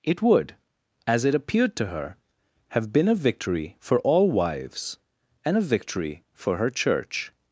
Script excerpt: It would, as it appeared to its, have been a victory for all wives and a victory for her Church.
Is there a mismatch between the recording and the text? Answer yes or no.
yes